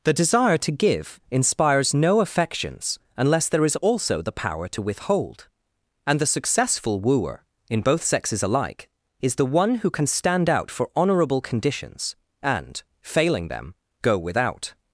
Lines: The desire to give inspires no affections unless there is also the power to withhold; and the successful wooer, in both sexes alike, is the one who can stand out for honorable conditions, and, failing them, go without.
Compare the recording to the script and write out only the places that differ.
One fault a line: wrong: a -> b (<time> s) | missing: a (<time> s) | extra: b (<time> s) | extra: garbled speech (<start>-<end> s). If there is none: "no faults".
no faults